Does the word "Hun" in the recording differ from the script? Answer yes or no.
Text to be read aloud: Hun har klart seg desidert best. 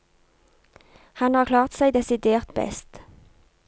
yes